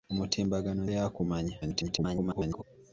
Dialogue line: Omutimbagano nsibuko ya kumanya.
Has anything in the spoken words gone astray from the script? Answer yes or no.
yes